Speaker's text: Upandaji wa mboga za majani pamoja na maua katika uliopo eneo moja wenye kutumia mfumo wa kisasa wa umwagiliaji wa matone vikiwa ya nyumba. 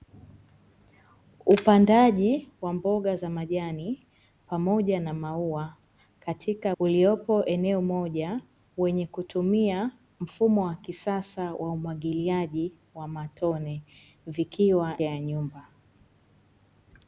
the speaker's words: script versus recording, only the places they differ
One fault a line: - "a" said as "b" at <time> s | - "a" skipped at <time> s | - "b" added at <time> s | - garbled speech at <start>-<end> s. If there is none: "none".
none